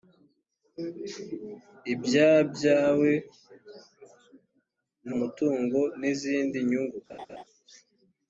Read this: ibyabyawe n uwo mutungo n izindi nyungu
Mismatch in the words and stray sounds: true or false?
true